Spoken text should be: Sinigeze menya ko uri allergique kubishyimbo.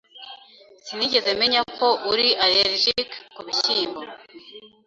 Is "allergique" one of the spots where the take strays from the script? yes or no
no